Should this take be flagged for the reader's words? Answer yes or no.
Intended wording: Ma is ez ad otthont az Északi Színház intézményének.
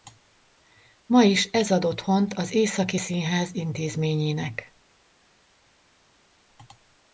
no